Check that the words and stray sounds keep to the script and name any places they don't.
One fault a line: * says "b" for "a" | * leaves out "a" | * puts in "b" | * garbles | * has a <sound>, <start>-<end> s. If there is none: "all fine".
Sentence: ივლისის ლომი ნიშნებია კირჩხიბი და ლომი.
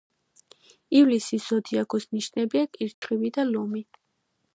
* says "ზოდიაქოს" for "ლომი"
* has a dropout, 2.9-3.0 s